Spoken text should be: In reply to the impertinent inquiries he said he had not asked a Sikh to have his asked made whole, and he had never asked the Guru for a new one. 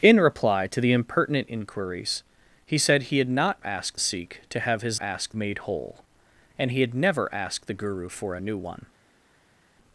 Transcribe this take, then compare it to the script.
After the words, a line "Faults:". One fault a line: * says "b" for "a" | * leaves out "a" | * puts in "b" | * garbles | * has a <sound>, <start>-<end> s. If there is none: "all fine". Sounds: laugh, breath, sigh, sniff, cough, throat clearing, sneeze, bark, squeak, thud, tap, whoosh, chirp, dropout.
In reply to the impertinent inquiries he said he had not asked a Sikh to have his asked made whole, and he had never asked the Guru for a new one.
Faults:
all fine